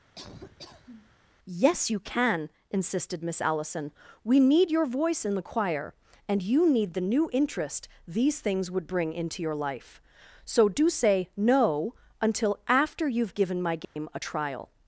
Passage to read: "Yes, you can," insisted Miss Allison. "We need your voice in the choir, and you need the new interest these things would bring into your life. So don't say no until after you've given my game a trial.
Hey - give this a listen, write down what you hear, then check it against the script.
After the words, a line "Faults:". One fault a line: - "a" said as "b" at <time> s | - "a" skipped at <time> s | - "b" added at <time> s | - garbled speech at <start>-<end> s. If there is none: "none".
"Yes, you can," insisted Miss Allison. "We need your voice in the choir, and you need the new interest these things would bring into your life. So do say no until after you've given my game a trial.
Faults:
- "don't" said as "do" at 10.7 s